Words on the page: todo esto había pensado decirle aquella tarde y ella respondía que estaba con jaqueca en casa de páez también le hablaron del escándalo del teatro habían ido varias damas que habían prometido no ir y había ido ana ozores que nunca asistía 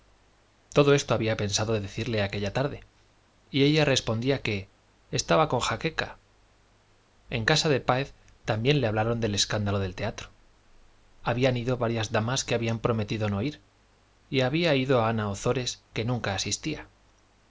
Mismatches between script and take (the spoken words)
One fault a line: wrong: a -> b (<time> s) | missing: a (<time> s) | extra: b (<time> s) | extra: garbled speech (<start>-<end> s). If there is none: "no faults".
no faults